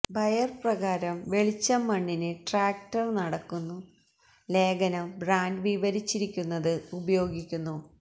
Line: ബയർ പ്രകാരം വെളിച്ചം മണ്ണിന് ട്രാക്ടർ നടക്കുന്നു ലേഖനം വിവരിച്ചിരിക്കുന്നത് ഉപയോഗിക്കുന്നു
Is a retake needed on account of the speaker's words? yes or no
yes